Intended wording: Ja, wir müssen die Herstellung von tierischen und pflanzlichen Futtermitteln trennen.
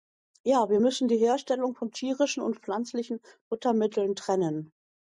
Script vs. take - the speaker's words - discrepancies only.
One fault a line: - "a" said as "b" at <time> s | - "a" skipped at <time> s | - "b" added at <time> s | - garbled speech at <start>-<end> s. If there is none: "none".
none